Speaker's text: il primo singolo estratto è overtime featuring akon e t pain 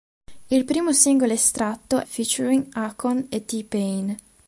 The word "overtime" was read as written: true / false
false